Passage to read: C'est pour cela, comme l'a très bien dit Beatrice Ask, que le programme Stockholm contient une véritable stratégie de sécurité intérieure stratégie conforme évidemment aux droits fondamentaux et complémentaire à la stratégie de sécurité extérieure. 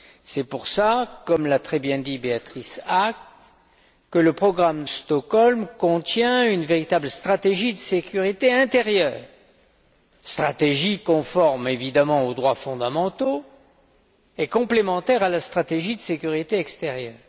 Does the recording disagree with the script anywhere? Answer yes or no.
no